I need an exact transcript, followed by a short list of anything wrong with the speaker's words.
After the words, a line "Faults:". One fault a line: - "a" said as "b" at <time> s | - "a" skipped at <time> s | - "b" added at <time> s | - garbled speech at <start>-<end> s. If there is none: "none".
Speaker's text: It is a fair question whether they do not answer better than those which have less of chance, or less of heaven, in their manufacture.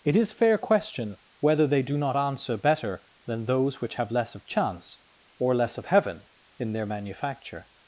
It is fair question whether they do not answer better than those which have less of chance, or less of heaven, in their manufacture.
Faults:
- "a" skipped at 0.3 s